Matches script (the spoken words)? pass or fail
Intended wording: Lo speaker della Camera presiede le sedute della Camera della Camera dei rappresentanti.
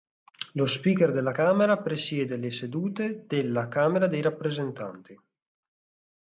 fail